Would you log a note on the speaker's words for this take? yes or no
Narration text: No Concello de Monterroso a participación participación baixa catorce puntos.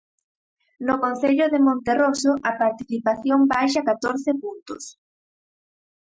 yes